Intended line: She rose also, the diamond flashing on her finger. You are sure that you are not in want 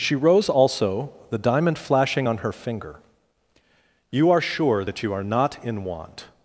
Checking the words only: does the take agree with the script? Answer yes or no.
yes